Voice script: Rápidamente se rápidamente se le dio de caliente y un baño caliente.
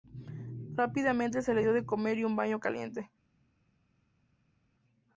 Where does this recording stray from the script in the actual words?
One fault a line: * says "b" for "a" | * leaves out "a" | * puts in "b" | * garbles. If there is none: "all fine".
* leaves out "rápidamente se"
* says "comer" for "caliente"